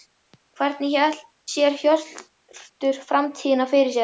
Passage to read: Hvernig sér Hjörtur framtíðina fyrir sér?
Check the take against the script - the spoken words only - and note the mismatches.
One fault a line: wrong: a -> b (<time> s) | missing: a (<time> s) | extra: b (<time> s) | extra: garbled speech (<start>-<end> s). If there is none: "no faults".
no faults